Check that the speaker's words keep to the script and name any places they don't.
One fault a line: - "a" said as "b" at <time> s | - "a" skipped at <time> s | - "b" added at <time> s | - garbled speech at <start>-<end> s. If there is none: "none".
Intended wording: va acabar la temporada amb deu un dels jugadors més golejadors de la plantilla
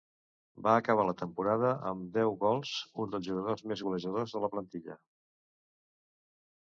- "gols" added at 2.4 s